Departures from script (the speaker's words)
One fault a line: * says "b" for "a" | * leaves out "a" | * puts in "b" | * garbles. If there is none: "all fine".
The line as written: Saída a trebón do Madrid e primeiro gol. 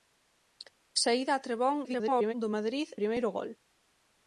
* garbles
* leaves out "e"